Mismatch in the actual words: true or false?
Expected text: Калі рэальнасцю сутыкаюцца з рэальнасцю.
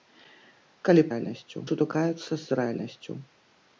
false